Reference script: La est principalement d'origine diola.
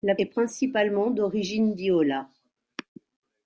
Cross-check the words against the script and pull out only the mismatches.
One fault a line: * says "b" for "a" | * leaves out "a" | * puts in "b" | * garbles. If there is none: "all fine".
all fine